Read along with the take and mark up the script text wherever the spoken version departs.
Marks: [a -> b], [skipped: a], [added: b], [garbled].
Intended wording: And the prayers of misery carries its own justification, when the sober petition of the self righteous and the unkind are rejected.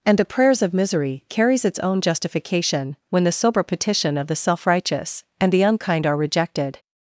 And the prayers of misery carries its own justification, when the sober petition of the self righteous and the unkind are rejected.